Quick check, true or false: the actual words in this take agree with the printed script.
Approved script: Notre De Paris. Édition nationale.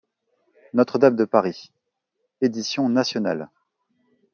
false